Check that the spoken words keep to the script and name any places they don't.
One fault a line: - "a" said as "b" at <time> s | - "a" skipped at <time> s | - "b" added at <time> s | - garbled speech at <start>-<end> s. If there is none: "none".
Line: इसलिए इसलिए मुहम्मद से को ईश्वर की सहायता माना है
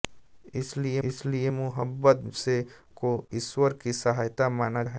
none